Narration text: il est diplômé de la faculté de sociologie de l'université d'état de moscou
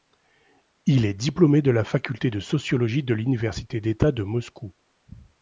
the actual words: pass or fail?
pass